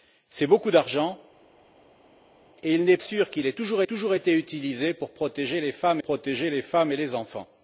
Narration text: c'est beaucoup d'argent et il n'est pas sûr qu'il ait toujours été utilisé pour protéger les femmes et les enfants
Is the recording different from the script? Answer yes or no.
yes